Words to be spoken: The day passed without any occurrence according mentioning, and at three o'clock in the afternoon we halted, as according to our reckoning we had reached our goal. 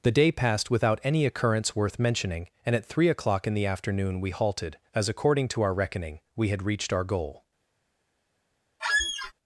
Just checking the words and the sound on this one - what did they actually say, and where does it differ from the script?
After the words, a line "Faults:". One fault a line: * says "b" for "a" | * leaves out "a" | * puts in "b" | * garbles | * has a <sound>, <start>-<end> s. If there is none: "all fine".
The day passed without any occurrence worth mentioning, and at three o'clock in the afternoon we halted, as according to our reckoning we had reached our goal.
Faults:
* says "worth" for "according"
* has a squeak, 8.8-9.3 s